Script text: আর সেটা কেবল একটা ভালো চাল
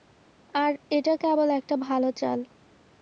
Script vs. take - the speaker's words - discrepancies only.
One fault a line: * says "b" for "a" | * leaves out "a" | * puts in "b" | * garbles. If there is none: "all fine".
* says "এটা" for "সেটা"